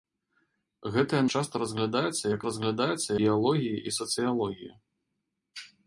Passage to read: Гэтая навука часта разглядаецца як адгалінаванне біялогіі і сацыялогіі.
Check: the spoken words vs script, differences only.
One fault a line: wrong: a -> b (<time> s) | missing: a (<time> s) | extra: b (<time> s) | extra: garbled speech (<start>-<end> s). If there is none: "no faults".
missing: навука (1.2 s)
wrong: адгалінаванне -> разглядаецца (2.5 s)